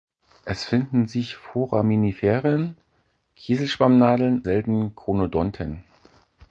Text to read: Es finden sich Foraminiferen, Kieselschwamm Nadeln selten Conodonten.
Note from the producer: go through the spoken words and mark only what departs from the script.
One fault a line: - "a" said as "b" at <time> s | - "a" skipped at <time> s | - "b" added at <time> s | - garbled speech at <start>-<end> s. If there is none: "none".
none